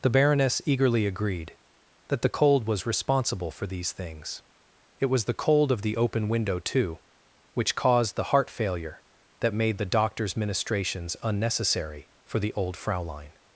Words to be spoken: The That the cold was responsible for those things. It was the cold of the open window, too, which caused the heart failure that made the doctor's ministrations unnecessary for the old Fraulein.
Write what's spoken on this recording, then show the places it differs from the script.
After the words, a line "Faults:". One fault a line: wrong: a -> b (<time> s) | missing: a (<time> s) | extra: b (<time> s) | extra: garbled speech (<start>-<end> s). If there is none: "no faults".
The Baroness eagerly agreed that the cold was responsible for these things. It was the cold of the open window, too, which caused the heart failure that made the doctor's ministrations unnecessary for the old Fraulein.
Faults:
extra: Baroness eagerly agreed (0.1 s)
wrong: those -> these (3.7 s)